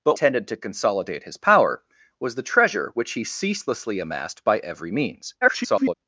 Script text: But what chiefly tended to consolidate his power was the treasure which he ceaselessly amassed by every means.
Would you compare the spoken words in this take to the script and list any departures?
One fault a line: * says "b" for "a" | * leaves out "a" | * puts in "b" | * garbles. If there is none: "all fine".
* leaves out "what chiefly"
* garbles